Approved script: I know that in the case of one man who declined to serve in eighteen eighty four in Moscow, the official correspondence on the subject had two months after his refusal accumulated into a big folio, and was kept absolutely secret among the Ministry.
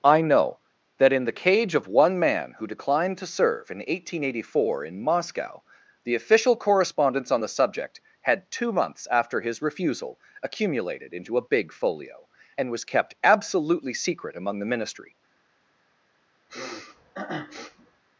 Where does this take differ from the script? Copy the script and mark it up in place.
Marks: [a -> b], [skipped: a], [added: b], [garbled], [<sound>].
I know that in the [case -> cage] of one man who declined to serve in eighteen eighty four in Moscow, the official correspondence on the subject had two months after his refusal accumulated into a big folio, and was kept absolutely secret among the Ministry. [sniff]